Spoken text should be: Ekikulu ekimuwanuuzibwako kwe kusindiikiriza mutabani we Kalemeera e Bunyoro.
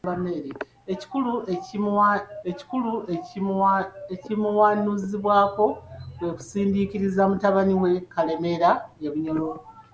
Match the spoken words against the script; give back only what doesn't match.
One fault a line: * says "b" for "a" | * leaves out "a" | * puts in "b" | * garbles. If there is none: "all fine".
* puts in "ekikulu"